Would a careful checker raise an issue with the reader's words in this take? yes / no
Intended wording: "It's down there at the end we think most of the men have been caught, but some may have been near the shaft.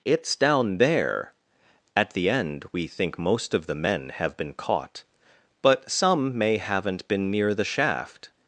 yes